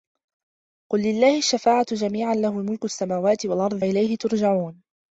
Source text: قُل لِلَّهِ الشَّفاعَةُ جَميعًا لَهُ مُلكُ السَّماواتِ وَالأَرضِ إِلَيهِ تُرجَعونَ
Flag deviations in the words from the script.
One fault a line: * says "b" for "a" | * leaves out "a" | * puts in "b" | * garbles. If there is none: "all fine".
all fine